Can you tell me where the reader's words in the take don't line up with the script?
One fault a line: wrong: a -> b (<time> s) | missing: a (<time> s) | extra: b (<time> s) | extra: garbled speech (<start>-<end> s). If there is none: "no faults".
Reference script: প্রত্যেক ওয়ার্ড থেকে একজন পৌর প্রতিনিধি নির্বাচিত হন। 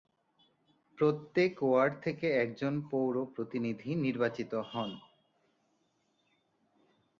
no faults